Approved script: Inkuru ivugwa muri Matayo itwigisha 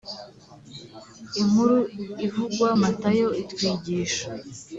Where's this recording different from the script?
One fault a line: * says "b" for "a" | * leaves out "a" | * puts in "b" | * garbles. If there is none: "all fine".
* leaves out "muri"